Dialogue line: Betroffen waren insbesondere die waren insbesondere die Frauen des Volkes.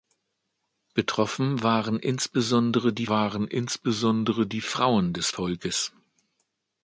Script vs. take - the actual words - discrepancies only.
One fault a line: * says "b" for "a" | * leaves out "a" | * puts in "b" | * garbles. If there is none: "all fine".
all fine